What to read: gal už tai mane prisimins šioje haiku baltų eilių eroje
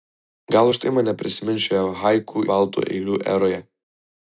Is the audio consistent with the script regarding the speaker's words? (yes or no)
yes